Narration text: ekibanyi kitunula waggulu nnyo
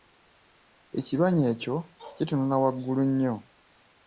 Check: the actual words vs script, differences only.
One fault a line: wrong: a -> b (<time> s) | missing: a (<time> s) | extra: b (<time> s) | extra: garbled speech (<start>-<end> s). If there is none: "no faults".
extra: ekyo (1.5 s)